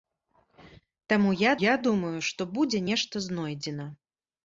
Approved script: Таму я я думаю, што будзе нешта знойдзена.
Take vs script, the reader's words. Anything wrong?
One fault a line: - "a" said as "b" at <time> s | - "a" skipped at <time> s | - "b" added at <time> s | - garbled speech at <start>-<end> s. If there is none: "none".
none